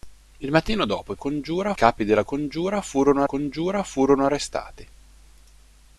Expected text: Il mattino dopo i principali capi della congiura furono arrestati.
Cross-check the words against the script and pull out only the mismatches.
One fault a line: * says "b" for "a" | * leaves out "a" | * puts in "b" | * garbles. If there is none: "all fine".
* says "congiura" for "principali"
* puts in "congiura furono"